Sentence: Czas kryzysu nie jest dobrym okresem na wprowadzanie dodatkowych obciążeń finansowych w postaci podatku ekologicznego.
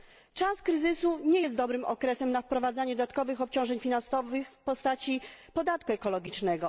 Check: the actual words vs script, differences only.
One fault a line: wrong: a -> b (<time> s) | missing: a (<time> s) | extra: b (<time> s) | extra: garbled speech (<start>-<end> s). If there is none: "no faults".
no faults